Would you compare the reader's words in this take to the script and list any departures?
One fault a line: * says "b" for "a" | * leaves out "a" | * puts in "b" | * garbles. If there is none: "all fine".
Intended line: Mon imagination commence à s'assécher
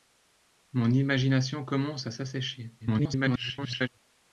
* garbles